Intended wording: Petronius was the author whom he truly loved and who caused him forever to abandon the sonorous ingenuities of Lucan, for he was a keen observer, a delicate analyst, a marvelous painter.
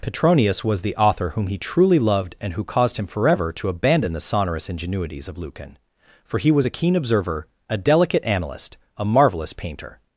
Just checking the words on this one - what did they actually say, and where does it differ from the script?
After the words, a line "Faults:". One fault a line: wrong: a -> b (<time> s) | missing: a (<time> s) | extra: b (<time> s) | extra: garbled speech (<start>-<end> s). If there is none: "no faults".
Petronius was the author whom he truly loved and who caused him forever to abandon the sonorous ingenuities of Lucan, for he was a keen observer, a delicate analyst, a marvelous painter.
Faults:
no faults